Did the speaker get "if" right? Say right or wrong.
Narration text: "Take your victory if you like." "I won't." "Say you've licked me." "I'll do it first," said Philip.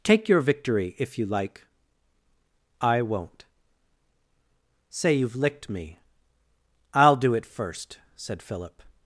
right